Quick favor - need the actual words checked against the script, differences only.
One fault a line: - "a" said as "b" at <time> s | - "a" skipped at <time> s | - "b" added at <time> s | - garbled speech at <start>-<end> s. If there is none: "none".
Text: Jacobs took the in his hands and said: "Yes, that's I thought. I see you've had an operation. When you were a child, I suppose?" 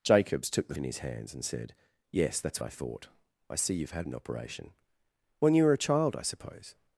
none